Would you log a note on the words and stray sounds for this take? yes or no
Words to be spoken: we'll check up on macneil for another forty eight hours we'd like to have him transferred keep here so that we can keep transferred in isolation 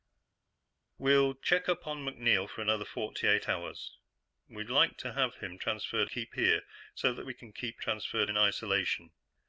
no